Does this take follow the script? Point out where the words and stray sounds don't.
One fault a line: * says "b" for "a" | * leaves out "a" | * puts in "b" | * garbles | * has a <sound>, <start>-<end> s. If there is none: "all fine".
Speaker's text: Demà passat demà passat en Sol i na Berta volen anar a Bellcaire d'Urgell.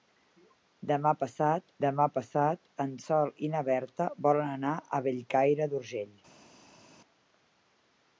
all fine